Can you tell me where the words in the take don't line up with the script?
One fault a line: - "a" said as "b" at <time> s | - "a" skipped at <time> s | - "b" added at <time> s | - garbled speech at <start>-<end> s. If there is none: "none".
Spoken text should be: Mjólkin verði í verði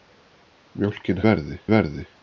none